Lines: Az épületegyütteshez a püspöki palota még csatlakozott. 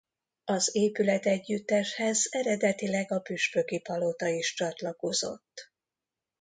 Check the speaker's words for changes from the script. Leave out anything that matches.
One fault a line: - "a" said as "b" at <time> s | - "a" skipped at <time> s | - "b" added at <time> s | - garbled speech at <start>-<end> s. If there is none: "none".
- "eredetileg" added at 2.3 s
- "még" said as "is" at 4.3 s